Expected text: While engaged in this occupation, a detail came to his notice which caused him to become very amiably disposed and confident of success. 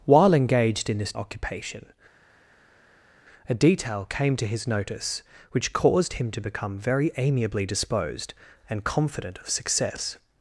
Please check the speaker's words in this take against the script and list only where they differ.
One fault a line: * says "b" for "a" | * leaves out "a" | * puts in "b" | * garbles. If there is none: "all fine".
all fine